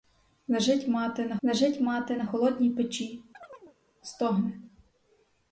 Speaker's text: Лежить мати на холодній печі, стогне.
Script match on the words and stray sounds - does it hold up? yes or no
no